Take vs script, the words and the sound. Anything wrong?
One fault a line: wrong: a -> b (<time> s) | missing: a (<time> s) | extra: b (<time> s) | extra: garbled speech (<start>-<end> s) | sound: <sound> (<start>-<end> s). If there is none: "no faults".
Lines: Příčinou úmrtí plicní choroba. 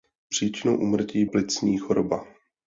no faults